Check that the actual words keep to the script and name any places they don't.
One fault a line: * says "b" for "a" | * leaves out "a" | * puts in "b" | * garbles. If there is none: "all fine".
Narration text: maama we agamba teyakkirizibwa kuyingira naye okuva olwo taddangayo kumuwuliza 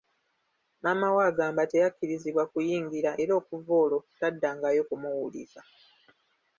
* says "era" for "naye"